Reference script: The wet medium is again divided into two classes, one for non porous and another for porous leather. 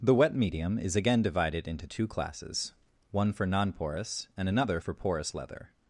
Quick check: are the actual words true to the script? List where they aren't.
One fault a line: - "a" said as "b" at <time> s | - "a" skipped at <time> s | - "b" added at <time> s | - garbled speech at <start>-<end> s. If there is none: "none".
none